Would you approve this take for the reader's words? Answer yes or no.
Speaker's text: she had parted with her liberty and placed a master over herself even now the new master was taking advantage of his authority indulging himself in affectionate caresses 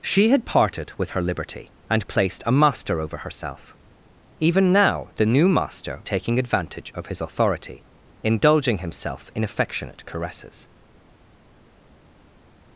no